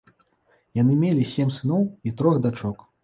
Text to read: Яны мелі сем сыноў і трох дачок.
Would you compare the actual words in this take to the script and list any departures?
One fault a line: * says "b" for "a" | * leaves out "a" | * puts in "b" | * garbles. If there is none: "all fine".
all fine